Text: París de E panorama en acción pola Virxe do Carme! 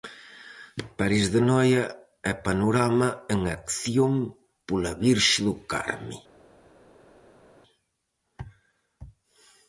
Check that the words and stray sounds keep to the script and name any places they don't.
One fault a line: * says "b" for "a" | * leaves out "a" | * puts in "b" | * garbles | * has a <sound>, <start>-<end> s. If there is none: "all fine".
* puts in "Noia"